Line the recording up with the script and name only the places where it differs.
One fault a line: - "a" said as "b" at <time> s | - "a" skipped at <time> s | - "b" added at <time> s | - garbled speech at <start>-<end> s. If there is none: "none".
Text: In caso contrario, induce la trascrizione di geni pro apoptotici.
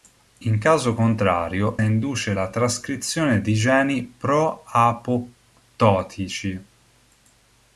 none